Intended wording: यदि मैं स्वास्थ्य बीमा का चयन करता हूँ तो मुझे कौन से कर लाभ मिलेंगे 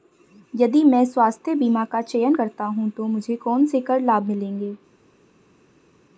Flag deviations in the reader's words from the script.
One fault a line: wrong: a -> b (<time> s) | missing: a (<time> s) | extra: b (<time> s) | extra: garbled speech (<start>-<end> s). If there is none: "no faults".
no faults